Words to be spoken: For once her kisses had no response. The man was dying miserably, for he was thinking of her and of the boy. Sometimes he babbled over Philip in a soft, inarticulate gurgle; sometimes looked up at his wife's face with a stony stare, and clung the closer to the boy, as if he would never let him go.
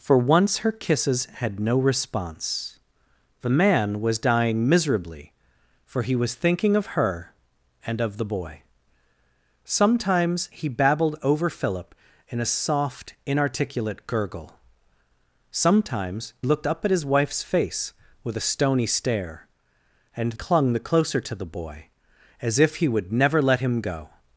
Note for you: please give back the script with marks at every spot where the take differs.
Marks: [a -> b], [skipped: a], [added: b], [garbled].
For once her kisses had no response. The man was dying miserably, for he was thinking of her and of the boy. Sometimes he babbled over Philip in a soft, inarticulate gurgle; sometimes looked up at his wife's face with a stony stare, and clung the closer to the boy, as if he would never let him go.